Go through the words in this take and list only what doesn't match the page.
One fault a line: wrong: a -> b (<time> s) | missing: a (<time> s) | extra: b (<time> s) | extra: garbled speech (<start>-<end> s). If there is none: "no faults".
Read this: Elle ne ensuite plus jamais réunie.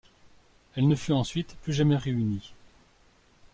extra: fut (0.9 s)